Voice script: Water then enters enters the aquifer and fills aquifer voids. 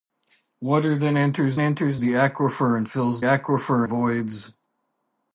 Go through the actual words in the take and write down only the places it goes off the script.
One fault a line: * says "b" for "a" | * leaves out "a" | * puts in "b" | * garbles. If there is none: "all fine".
all fine